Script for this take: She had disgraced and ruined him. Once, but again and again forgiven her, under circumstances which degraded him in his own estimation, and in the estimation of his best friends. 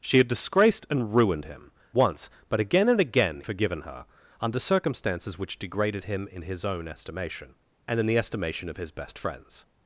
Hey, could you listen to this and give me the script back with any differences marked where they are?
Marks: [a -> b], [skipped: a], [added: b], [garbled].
She had disgraced and ruined him. Once, but again and again forgiven her, under circumstances which degraded him in his own estimation, and in the estimation of his best friends.